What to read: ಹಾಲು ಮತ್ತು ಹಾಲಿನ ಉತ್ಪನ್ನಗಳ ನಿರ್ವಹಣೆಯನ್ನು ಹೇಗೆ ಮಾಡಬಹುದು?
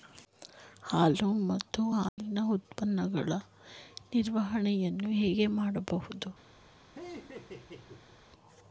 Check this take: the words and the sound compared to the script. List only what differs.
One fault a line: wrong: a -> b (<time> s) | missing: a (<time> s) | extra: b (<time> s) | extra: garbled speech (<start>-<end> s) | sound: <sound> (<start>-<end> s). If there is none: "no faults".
sound: dropout (2.1-2.2 s)
sound: laugh (6.9-8.2 s)